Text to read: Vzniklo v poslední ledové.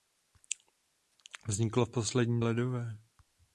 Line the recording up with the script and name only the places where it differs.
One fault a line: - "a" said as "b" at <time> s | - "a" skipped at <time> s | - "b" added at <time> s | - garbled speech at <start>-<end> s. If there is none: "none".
none